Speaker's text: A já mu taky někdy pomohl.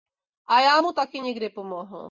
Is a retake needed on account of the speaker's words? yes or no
no